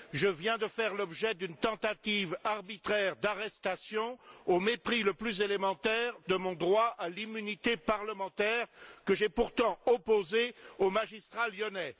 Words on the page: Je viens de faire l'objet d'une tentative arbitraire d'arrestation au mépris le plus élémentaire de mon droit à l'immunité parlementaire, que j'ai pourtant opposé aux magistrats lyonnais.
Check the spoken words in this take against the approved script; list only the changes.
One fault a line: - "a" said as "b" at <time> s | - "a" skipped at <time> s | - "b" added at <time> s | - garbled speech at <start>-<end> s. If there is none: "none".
none